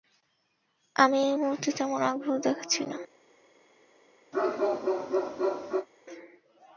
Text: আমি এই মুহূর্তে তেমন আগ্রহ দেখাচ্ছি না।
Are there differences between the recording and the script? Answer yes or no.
no